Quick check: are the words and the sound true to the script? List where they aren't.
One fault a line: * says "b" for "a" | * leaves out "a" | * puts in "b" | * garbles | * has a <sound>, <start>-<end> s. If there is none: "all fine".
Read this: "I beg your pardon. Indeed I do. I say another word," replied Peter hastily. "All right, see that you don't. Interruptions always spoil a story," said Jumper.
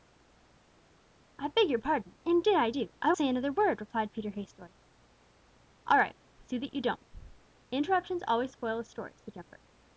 all fine